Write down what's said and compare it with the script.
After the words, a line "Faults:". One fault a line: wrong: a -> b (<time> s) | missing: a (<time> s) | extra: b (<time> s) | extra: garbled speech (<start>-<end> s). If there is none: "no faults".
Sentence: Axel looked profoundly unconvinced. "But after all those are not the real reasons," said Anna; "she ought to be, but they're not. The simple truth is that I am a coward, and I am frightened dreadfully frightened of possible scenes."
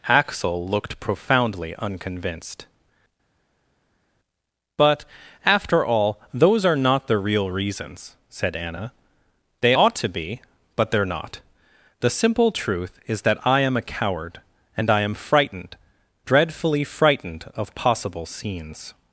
Axel looked profoundly unconvinced. "But after all those are not the real reasons," said Anna; "they ought to be, but they're not. The simple truth is that I am a coward, and I am frightened dreadfully frightened of possible scenes."
Faults:
wrong: she -> they (9.6 s)